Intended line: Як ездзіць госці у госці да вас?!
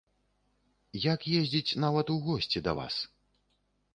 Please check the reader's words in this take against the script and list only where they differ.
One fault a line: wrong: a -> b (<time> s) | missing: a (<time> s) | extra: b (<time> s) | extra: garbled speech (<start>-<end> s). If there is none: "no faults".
wrong: госці -> нават (1.9 s)